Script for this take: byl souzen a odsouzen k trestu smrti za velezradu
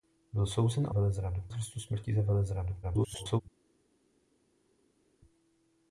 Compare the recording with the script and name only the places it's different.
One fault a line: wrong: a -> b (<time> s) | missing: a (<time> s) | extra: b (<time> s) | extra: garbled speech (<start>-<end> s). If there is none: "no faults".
wrong: odsouzen -> velezradu (0.9 s)
extra: garbled speech (2.8-3.4 s)